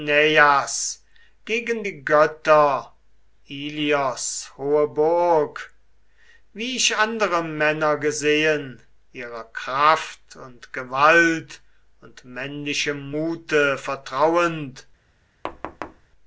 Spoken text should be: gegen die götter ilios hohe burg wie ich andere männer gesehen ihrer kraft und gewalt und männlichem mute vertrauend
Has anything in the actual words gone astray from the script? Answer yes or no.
no